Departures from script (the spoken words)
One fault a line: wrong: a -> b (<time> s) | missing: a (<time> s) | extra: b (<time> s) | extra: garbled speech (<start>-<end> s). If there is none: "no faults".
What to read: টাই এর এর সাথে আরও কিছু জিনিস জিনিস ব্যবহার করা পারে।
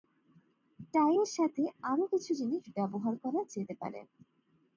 missing: এর (1.3 s)
missing: জিনিস (2.6 s)
extra: যেতে (3.5 s)